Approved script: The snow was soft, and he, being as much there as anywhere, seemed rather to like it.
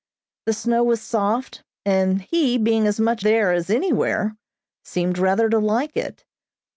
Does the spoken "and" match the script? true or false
true